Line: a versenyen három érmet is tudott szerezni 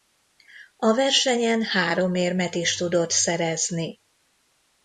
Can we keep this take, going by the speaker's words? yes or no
yes